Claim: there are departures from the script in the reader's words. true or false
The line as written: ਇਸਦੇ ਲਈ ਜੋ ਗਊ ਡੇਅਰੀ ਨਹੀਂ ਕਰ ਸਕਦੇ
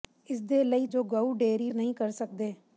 false